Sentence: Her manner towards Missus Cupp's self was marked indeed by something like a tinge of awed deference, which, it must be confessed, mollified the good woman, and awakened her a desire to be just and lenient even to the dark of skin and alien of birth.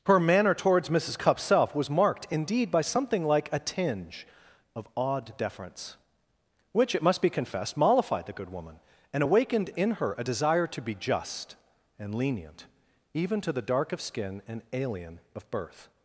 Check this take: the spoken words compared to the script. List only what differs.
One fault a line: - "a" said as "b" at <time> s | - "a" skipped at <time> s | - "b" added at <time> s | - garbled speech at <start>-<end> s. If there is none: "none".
- "in" added at 9.8 s